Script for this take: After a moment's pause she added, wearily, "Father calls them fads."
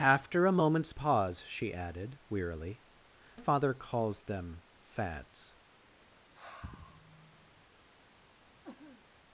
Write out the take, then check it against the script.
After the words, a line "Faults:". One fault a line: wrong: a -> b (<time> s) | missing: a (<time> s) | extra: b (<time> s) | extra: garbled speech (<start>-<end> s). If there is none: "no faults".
After a moment's pause she added, wearily, "Father calls them fads."
Faults:
no faults